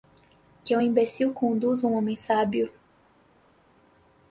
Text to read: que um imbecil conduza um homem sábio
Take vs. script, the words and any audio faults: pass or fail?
pass